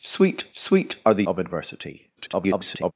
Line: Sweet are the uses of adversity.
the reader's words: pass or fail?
fail